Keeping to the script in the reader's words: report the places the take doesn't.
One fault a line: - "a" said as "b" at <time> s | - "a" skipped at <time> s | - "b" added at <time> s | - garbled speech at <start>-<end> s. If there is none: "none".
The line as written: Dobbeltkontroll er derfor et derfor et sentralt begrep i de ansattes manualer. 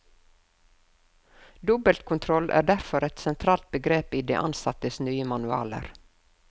- "derfor et" skipped at 3.2 s
- "nye" added at 5.1 s